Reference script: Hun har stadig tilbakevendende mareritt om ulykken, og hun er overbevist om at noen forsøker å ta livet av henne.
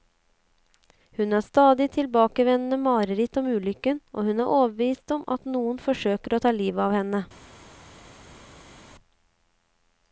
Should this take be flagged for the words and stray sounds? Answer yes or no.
no